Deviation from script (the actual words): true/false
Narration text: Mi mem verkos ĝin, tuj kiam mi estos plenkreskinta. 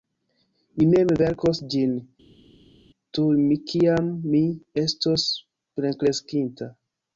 false